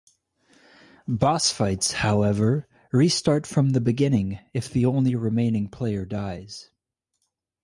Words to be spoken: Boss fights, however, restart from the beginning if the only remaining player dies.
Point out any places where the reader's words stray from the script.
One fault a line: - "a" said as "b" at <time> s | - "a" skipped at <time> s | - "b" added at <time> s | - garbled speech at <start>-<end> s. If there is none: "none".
none